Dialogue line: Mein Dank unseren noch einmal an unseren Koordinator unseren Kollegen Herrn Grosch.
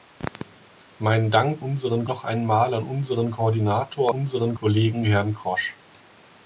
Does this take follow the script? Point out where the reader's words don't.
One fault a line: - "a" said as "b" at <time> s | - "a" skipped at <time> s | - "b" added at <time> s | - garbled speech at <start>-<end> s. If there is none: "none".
none